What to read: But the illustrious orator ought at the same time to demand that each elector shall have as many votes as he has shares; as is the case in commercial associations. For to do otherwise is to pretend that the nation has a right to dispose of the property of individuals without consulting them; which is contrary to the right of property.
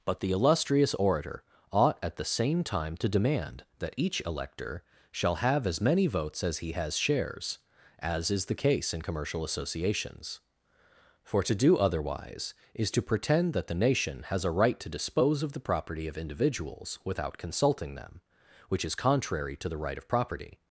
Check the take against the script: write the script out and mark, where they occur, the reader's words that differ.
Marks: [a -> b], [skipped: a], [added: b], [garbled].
But the illustrious orator ought at the same time to demand that each elector shall have as many votes as he has shares; as is the case in commercial associations. For to do otherwise is to pretend that the nation has a right to dispose of the property of individuals without consulting them; which is contrary to the right of property.